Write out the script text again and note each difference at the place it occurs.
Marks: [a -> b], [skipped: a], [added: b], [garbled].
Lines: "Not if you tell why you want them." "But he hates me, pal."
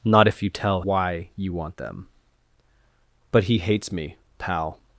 "Not if you tell why you want them." "But he hates me, pal."